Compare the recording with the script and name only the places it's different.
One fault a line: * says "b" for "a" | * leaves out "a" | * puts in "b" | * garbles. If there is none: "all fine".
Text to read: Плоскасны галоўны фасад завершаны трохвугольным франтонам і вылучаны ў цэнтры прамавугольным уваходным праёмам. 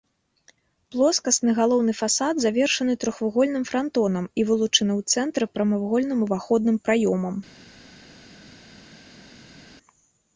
all fine